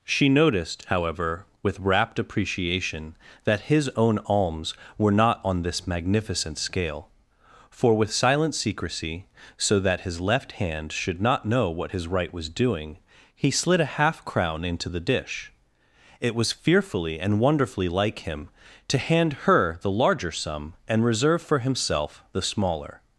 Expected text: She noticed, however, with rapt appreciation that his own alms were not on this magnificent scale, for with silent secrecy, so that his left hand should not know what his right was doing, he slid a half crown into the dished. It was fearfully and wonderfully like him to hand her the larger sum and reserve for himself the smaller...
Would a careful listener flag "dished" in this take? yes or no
yes